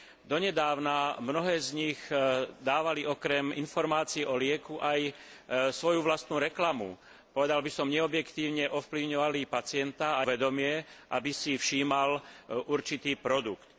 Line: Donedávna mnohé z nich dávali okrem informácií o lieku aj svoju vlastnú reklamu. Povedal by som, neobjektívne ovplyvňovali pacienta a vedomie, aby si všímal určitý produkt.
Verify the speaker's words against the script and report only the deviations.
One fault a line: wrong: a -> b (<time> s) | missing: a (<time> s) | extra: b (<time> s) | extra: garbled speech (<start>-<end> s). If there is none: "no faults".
no faults